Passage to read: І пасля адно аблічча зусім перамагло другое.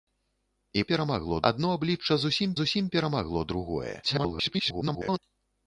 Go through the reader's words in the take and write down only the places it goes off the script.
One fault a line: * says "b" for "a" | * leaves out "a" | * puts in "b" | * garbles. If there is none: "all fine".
* says "перамагло" for "пасля"
* puts in "зусім"
* garbles